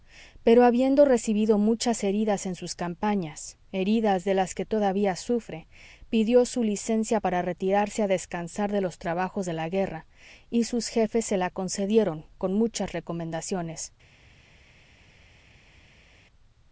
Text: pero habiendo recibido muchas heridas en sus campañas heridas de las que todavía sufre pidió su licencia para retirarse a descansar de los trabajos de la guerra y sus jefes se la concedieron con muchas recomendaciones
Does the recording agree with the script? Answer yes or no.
yes